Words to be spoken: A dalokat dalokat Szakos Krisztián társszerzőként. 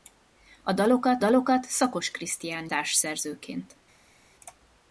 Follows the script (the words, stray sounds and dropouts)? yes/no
yes